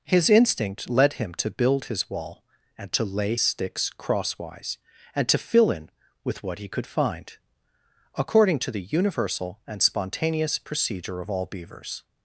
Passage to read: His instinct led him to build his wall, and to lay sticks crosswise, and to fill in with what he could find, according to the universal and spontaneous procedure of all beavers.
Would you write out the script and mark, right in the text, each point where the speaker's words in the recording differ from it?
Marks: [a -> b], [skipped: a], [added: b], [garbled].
His instinct led him to build his wall, and to lay sticks crosswise, and to fill in with what he could find, according to the universal and spontaneous procedure of all beavers.